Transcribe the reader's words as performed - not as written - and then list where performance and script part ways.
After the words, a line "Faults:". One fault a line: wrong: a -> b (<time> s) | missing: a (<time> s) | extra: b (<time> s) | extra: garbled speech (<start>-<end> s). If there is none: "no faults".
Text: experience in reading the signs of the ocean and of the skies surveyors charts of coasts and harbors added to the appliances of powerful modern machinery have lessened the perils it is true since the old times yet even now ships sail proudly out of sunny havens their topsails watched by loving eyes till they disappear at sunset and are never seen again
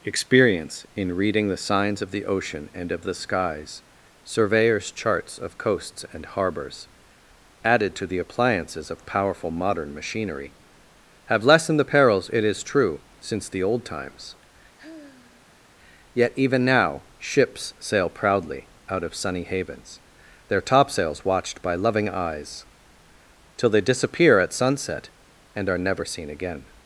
experience in reading the signs of the ocean and of the skies surveyors charts of coasts and harbors added to the appliances of powerful modern machinery have lessened the perils it is true since the old times yet even now ships sail proudly out of sunny havens their topsails watched by loving eyes till they disappear at sunset and are never seen again
Faults:
no faults